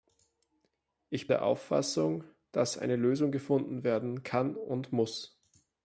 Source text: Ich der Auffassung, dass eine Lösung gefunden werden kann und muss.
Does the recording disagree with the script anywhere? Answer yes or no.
no